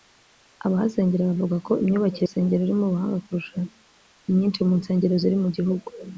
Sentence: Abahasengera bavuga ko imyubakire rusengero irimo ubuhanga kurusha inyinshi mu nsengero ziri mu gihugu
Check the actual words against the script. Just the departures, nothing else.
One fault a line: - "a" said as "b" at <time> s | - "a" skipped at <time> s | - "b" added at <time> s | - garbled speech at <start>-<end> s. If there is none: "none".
none